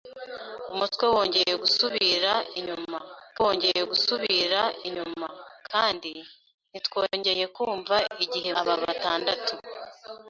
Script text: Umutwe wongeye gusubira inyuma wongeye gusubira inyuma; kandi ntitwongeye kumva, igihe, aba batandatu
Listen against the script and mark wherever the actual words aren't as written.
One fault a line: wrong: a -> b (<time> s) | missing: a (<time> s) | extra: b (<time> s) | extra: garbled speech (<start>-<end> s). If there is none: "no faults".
no faults